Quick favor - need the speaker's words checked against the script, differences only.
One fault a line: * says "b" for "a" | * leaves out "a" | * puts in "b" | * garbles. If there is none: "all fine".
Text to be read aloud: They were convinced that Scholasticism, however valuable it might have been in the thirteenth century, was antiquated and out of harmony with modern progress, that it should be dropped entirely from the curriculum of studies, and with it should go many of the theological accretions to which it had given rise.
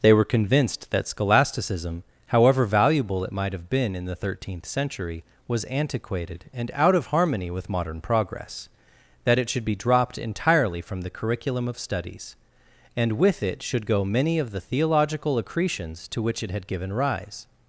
all fine